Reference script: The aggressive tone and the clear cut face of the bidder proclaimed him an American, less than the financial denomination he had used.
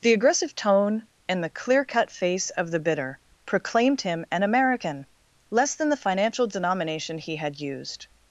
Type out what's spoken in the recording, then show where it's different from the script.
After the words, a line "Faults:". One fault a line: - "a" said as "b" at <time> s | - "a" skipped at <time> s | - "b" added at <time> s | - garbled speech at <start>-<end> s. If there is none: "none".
The aggressive tone and the clear cut face of the bidder proclaimed him an American, less than the financial denomination he had used.
Faults:
none